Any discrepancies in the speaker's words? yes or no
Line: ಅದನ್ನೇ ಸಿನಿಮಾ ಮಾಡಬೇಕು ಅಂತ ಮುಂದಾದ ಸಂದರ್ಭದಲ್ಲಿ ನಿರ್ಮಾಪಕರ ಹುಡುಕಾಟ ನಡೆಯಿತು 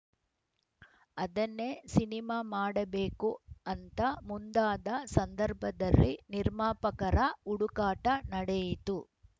no